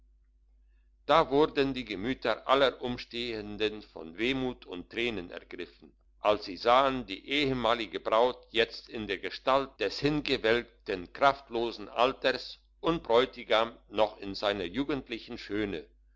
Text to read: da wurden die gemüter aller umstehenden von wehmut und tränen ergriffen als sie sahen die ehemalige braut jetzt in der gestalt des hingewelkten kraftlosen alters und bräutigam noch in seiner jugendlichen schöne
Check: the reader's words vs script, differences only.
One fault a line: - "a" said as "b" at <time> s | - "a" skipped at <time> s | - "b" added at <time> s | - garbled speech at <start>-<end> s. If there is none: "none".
none